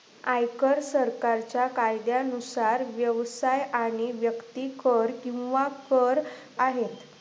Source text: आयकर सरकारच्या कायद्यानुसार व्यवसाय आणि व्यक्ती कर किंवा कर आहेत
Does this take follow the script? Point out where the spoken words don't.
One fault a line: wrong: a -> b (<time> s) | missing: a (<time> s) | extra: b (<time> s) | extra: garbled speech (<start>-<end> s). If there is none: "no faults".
no faults